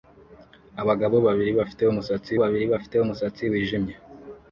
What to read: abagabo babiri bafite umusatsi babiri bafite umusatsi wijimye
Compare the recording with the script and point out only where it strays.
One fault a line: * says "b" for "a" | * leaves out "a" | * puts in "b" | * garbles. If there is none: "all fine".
all fine